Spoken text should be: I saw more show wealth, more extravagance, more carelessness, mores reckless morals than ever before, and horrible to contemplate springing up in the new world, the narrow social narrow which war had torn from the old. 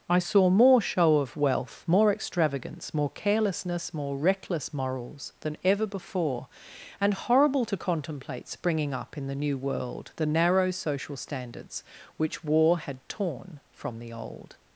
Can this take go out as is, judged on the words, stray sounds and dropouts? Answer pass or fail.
fail